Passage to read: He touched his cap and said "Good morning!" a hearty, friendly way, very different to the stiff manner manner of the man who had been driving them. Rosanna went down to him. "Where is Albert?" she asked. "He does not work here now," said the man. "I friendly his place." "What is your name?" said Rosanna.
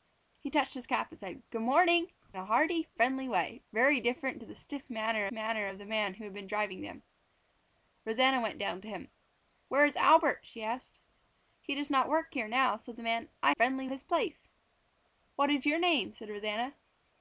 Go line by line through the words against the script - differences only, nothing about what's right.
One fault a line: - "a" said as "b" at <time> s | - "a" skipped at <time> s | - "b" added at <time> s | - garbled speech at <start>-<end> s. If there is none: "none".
none